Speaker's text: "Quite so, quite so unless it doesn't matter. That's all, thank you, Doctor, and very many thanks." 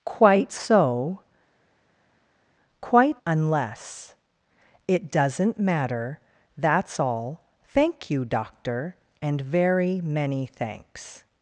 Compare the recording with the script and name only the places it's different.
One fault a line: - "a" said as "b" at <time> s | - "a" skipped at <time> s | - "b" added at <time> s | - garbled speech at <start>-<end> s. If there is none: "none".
- "so" skipped at 3.2 s